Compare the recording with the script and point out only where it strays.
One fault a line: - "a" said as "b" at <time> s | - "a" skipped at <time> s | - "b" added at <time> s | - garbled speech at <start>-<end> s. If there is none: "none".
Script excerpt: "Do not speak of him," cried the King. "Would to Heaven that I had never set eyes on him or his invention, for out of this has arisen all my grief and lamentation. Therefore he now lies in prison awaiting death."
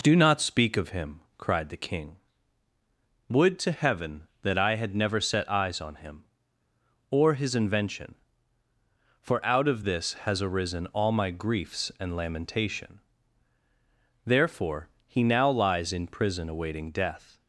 - "grief" said as "griefs" at 11.3 s